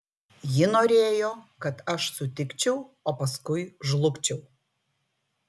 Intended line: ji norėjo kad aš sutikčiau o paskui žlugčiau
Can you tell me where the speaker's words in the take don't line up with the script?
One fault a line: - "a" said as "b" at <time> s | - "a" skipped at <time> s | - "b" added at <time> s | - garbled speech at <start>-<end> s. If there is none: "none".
none